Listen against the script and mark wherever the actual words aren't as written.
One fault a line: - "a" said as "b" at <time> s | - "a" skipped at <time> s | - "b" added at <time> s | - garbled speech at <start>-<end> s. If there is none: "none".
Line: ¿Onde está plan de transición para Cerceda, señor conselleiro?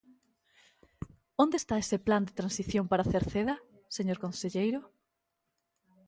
- "ese" added at 1.8 s